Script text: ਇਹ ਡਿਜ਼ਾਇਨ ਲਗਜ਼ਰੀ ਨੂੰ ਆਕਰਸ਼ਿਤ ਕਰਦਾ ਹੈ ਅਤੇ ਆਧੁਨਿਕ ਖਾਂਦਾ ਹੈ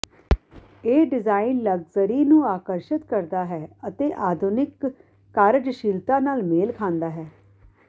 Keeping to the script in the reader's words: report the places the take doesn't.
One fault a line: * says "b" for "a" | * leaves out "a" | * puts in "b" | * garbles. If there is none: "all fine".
* puts in "ਕਾਰਜਸ਼ੀਲਤਾ ਨਾਲ ਮੇਲ"